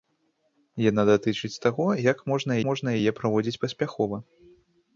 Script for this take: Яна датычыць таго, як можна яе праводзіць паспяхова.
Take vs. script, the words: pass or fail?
fail